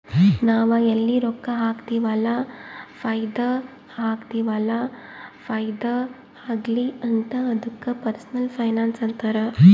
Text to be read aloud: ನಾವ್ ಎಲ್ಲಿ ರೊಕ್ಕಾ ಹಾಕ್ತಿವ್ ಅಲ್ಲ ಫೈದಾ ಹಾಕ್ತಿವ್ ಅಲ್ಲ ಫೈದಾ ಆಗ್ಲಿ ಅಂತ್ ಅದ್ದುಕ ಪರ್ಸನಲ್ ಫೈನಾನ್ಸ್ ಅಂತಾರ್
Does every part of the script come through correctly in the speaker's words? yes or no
yes